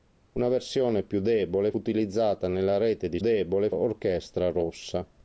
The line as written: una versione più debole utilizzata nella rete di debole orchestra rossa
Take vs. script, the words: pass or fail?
pass